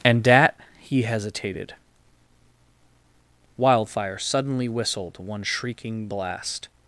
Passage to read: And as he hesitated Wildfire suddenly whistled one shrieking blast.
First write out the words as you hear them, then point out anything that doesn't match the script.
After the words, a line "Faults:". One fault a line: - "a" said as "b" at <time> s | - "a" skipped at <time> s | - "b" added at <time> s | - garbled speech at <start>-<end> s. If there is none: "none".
And at he hesitated Wildfire suddenly whistled one shrieking blast.
Faults:
- "as" said as "at" at 0.3 s